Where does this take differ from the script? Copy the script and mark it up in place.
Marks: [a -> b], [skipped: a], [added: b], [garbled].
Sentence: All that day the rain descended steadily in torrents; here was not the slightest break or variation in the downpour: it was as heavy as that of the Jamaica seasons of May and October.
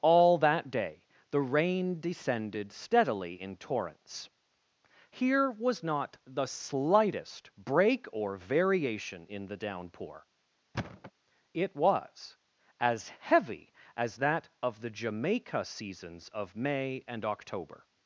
All that day the rain descended steadily in torrents; here was not the slightest break or variation in the downpour: it was as heavy as that of the Jamaica seasons of May and October.